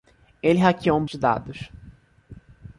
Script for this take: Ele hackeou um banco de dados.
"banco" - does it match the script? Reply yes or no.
no